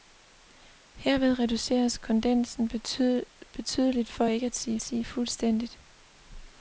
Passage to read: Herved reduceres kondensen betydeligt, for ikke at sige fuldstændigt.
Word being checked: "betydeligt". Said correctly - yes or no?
yes